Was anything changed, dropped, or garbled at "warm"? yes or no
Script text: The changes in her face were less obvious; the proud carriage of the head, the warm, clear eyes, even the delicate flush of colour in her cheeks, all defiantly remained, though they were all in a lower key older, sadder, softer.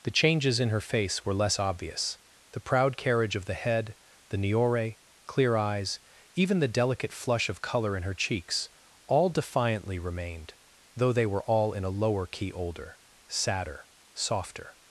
yes